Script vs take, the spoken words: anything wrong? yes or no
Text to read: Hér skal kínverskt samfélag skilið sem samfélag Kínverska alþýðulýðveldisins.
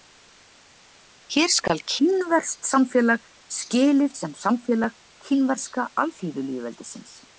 no